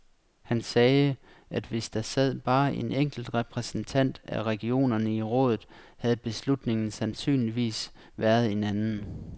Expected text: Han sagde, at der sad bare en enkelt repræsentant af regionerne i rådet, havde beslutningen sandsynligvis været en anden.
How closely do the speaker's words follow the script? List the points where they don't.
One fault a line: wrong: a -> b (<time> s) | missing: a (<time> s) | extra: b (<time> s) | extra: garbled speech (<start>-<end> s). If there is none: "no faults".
extra: hvis (1.6 s)